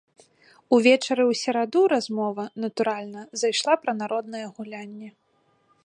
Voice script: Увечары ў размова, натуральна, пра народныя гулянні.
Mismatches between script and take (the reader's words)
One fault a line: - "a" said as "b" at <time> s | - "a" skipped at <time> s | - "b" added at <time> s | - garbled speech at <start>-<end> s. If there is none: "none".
- "сераду" added at 1.4 s
- "зайшла" added at 3.4 s